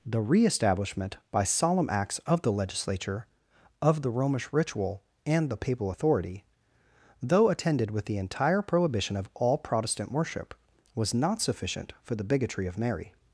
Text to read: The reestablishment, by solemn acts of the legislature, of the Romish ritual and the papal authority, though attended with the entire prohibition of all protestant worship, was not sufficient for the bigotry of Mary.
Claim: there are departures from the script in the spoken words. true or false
false